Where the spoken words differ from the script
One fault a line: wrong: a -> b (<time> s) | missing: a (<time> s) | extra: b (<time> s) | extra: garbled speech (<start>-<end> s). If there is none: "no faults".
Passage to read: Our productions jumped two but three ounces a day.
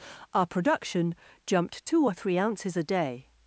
wrong: productions -> production (0.5 s)
wrong: but -> or (2.0 s)